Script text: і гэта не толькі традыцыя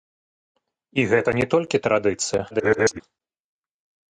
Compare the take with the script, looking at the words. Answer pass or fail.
fail